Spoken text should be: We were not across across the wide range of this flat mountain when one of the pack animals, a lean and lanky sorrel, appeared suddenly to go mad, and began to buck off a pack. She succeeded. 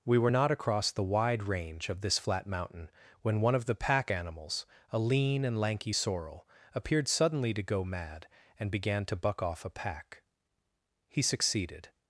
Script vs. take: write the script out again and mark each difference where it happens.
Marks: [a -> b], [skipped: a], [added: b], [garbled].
We were not across [skipped: across] the wide range of this flat mountain when one of the pack animals, a lean and lanky sorrel, appeared suddenly to go mad, and began to buck off a pack. [She -> He] succeeded.